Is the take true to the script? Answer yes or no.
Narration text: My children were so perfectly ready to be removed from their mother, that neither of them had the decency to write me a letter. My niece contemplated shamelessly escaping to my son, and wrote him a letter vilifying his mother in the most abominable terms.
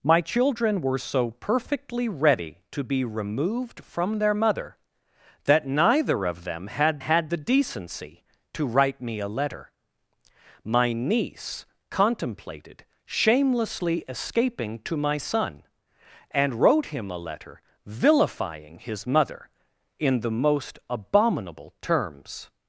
no